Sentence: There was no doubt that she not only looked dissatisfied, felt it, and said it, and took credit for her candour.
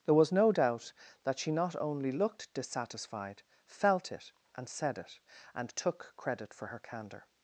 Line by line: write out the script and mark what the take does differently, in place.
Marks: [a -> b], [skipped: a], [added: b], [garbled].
There was no doubt that she not only looked dissatisfied, felt it, and said it, and took credit for her candour.